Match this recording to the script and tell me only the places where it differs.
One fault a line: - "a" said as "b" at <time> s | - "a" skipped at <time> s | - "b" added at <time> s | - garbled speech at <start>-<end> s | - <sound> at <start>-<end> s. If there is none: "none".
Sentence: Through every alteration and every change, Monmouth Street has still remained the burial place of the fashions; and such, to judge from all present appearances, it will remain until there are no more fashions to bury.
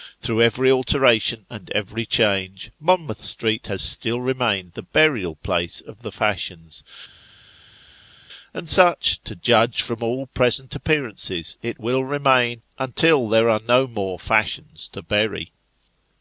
none